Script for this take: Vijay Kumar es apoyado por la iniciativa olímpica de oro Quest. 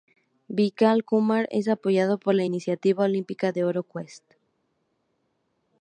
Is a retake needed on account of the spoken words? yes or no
no